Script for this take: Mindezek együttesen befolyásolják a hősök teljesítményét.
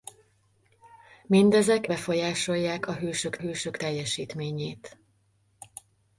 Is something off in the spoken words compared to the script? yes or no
yes